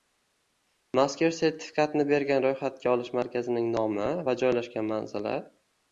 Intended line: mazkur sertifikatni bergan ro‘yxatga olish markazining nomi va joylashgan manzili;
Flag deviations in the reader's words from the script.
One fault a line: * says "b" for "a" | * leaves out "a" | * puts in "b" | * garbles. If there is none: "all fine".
all fine